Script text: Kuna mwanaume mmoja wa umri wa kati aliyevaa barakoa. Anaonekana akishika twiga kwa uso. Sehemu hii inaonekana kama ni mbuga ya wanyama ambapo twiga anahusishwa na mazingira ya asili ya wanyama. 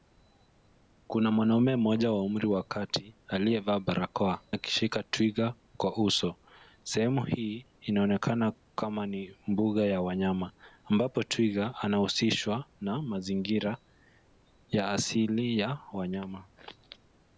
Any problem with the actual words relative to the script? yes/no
yes